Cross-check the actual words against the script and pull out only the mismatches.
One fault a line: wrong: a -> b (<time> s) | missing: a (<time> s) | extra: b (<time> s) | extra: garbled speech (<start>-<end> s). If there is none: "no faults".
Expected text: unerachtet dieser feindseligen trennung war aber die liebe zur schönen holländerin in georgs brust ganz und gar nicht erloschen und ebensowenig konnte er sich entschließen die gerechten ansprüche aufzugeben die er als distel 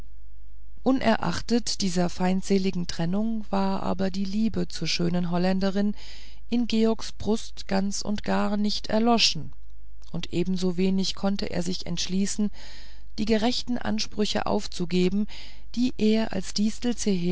no faults